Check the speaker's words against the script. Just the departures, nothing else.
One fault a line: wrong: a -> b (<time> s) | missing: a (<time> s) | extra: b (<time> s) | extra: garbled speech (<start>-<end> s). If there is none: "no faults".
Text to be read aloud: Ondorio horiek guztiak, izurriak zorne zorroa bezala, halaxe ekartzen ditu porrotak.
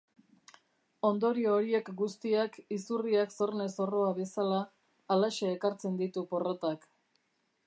no faults